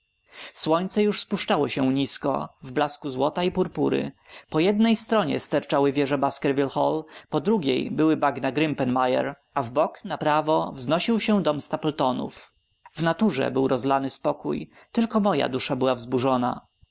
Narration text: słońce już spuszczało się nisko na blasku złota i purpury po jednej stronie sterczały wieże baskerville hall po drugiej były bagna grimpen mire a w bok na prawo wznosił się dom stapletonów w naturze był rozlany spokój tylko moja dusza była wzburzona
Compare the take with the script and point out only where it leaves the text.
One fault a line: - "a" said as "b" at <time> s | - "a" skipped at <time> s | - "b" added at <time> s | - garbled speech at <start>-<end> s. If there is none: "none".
- "na" said as "w" at 2.6 s